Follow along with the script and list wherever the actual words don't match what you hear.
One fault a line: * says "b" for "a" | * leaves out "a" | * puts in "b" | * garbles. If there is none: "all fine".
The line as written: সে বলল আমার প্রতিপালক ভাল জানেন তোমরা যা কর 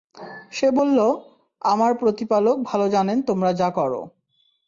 all fine